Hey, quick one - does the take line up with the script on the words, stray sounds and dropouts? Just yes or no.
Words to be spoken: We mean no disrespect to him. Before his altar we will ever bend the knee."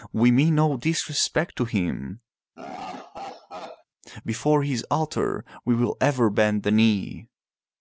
no